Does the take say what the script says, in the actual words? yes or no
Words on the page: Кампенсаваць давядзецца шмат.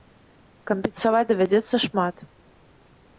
yes